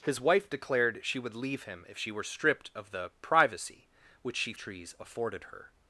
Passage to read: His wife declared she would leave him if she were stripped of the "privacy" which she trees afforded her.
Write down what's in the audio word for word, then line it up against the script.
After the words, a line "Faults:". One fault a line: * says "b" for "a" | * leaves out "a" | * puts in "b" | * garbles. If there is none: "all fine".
His wife declared she would leave him if she were stripped of the "privacy" which she trees afforded her.
Faults:
all fine